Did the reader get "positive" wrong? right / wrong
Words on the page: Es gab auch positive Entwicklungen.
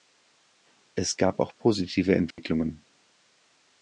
right